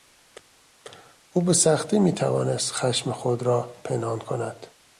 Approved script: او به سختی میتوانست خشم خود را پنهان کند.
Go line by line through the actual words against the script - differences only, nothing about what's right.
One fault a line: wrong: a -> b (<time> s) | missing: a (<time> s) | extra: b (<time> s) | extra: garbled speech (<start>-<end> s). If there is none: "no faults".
no faults